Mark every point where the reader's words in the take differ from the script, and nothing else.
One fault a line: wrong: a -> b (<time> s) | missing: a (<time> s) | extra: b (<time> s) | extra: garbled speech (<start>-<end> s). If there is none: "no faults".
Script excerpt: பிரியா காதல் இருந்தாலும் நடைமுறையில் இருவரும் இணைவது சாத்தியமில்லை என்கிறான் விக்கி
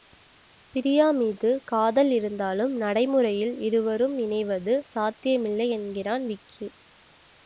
extra: மீது (1.1 s)